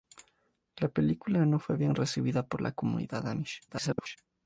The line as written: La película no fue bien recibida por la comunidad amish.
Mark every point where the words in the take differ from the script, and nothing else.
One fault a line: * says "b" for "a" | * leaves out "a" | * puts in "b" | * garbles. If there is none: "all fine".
* garbles